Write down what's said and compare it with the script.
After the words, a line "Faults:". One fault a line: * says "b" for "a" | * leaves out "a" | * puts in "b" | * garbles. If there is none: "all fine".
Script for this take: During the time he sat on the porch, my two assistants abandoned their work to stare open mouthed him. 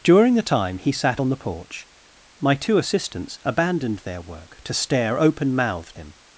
During the time he sat on the porch, my two assistants abandoned their work to stare open mouthed him.
Faults:
all fine